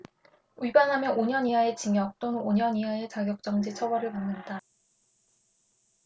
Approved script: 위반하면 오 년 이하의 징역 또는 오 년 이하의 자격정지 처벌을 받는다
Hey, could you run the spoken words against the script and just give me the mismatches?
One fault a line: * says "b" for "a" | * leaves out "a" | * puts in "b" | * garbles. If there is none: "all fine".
all fine